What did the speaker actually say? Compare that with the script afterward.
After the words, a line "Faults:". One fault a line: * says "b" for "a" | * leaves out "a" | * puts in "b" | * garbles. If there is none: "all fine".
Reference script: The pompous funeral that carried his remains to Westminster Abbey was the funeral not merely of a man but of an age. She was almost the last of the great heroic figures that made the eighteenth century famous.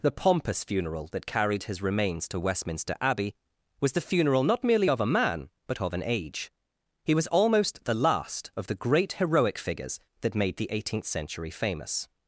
The pompous funeral that carried his remains to Westminster Abbey was the funeral not merely of a man but of an age. He was almost the last of the great heroic figures that made the eighteenth century famous.
Faults:
* says "He" for "She"